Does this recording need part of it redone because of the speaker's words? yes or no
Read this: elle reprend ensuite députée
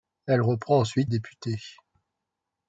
no